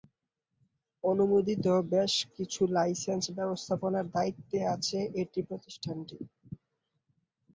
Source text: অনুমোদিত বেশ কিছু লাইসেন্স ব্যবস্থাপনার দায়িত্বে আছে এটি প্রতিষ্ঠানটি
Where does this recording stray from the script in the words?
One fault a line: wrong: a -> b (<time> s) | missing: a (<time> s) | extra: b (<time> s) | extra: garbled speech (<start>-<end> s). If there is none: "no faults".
no faults